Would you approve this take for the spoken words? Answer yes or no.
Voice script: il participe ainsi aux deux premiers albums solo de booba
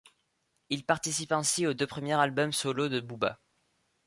yes